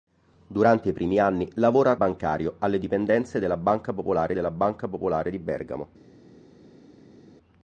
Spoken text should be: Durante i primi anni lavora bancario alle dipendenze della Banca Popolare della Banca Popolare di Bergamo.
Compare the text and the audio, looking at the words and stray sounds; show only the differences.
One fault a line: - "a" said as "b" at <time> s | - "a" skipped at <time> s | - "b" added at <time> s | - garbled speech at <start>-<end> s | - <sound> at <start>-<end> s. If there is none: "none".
none